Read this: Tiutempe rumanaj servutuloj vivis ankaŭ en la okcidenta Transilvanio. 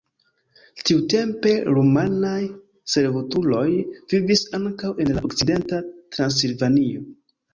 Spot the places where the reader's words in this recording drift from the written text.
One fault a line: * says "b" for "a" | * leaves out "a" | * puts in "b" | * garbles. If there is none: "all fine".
all fine